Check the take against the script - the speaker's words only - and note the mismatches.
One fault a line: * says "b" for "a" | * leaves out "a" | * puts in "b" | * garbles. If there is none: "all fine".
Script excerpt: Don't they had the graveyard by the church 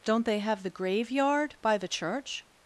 * says "have" for "had"